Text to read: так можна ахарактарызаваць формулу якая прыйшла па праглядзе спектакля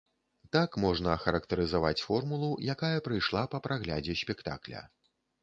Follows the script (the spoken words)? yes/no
yes